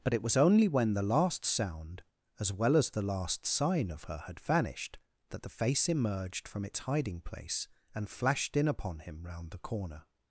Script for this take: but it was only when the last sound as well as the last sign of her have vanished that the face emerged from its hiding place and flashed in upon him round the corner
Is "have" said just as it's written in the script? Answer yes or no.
no